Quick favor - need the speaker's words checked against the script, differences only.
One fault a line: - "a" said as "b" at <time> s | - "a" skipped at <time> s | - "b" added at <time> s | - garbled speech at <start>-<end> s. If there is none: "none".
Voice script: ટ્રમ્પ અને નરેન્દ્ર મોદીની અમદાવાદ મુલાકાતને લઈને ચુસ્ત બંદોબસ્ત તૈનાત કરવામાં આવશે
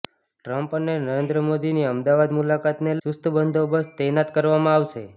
- "લઈને" skipped at 3.0 s